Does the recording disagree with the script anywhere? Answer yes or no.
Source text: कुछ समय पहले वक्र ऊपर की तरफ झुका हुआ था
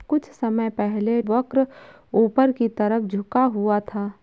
no